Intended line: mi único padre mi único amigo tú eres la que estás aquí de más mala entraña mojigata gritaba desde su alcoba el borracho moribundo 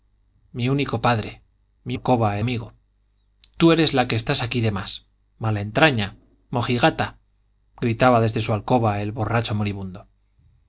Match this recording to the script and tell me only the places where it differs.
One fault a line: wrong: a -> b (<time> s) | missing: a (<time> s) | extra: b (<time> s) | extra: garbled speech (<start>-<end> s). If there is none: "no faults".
wrong: único -> alcoba (1.9 s)